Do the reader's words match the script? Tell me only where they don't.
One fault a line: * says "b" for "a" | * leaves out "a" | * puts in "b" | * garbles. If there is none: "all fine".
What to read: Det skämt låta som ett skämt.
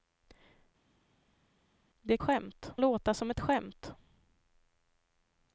all fine